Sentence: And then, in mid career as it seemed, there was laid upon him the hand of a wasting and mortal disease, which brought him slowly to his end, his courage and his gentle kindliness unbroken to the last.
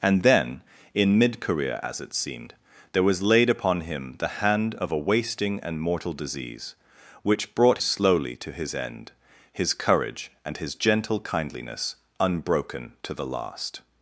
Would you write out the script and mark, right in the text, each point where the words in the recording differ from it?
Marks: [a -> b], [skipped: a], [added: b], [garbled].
And then, in mid career as it seemed, there was laid upon him the hand of a wasting and mortal disease, which brought [skipped: him] slowly to his end, his courage and his gentle kindliness unbroken to the last.